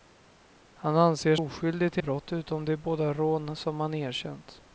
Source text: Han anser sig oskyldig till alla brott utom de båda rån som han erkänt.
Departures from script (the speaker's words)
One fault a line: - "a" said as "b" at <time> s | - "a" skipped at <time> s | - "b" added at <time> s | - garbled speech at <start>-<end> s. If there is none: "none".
- "sig" skipped at 1.4 s
- "alla" skipped at 2.0 s